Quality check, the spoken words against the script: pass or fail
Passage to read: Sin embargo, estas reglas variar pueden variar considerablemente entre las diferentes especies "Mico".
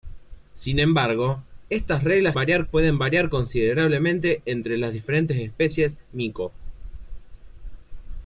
pass